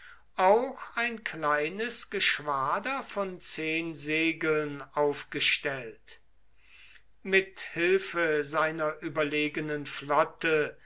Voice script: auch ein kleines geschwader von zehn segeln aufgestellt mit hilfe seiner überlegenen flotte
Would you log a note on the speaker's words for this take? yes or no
no